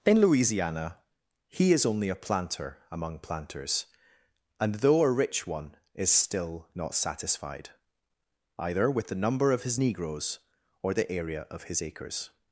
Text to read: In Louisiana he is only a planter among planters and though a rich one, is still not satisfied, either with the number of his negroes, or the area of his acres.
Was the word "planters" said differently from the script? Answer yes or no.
no